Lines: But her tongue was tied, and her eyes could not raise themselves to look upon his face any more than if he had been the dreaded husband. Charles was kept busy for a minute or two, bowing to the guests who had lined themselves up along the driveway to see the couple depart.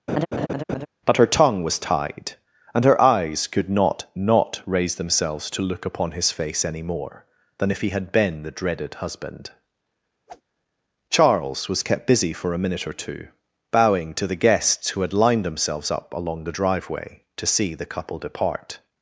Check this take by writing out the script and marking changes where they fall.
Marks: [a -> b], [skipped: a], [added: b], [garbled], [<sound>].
[laugh] But her tongue was tied, and her eyes could not [added: not] raise themselves to look upon his face any more than if he had been the dreaded husband. [whoosh] Charles was kept busy for a minute or two, bowing to the guests who had lined themselves up along the driveway to see the couple depart.